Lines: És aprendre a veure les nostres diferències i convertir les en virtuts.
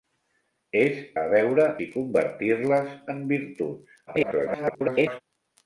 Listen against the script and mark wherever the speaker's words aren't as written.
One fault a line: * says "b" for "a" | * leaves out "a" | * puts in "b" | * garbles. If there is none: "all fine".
* leaves out "aprendre"
* leaves out "les nostres diferències"
* garbles